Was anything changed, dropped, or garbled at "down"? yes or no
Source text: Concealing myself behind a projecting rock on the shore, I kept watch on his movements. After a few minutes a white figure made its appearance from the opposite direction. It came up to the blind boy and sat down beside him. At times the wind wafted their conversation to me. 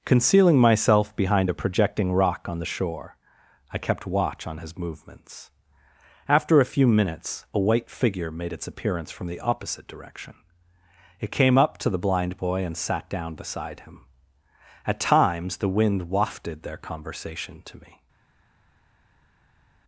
no